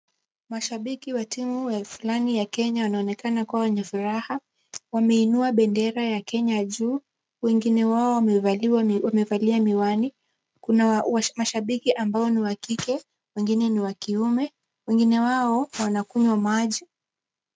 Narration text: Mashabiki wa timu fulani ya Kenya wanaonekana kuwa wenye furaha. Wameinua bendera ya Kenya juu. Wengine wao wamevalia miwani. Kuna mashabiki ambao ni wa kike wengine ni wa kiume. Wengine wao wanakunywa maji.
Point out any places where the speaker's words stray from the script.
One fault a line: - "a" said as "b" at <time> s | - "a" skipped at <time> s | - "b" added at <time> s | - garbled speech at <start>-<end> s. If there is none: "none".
none